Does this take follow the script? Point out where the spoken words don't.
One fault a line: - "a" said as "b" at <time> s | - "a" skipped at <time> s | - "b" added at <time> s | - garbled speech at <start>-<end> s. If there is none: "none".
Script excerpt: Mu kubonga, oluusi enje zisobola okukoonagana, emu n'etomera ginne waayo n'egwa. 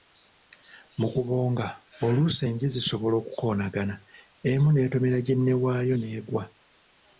none